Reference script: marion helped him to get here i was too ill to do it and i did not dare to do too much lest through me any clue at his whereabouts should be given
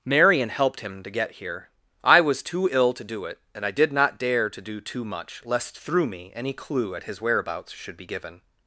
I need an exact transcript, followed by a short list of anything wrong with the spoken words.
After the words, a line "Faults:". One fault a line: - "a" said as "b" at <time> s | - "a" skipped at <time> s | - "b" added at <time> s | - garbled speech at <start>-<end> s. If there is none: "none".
marion helped him to get here i was too ill to do it and i did not dare to do too much lest through me any clue at his whereabouts should be given
Faults:
none